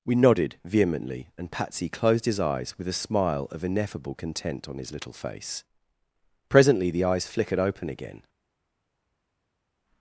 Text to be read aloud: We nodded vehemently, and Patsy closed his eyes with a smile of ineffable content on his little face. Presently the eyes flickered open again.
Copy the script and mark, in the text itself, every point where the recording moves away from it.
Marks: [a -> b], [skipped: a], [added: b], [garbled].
We nodded vehemently, and Patsy closed his eyes with a smile of ineffable content on his little face. Presently the eyes flickered open again.